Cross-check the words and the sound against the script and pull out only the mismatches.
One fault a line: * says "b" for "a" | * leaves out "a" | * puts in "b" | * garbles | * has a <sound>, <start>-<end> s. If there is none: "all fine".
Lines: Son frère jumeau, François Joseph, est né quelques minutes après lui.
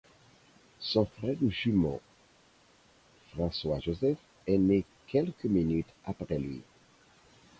all fine